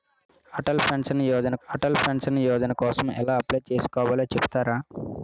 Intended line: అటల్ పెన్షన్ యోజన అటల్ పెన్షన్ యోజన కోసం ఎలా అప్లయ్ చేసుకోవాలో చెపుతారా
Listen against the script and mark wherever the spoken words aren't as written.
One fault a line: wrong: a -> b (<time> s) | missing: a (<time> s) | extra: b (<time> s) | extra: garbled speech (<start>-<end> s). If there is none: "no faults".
no faults